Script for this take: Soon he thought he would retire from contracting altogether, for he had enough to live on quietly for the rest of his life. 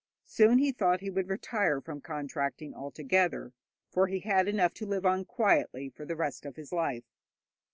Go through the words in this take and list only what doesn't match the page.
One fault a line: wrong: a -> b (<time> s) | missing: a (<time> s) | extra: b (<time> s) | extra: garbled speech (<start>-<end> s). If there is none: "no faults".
no faults